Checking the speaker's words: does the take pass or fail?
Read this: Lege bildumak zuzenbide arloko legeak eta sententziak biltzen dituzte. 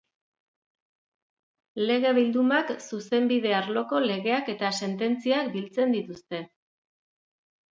pass